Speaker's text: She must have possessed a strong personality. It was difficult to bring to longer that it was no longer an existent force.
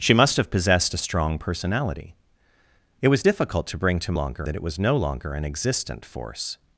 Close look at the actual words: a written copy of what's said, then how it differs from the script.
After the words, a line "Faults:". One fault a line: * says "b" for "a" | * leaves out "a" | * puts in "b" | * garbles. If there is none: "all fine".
She must have possessed a strong personality. It was difficult to bring to longer that it was no longer an existent force.
Faults:
all fine